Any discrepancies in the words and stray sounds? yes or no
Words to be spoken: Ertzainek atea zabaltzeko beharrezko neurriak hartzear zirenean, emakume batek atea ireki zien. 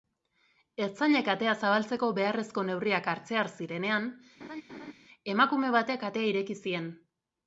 yes